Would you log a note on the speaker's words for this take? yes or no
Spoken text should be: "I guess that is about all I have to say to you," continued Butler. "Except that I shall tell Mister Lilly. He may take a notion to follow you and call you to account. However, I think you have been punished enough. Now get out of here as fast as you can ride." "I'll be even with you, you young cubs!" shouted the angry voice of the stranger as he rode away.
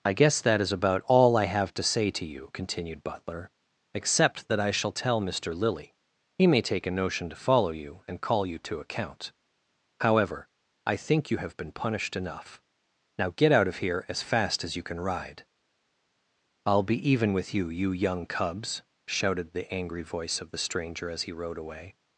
no